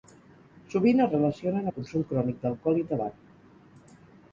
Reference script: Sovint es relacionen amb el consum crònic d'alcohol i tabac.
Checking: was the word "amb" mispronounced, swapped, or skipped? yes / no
yes